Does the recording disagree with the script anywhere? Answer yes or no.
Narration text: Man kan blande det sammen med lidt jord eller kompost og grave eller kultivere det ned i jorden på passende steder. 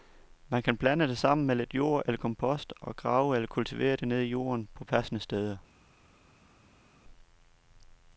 no